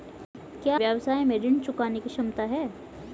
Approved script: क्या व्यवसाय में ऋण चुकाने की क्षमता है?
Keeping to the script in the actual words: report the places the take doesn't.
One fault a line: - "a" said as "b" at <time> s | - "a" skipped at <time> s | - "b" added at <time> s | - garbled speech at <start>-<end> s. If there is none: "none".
none